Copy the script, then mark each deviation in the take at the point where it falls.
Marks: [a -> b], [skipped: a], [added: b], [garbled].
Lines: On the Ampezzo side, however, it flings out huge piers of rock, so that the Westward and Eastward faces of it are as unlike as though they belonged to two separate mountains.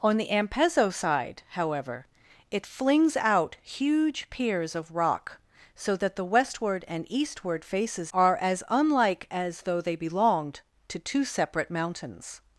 On the Ampezzo side, however, it flings out huge piers of rock, so that the Westward and Eastward faces [skipped: of it] are as unlike as though they belonged to two separate mountains.